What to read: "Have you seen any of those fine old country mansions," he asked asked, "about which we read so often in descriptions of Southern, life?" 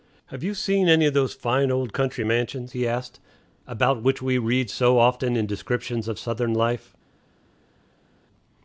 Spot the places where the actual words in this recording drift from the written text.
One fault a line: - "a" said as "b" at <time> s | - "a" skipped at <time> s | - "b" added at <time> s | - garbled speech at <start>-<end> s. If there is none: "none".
- "asked" skipped at 3.2 s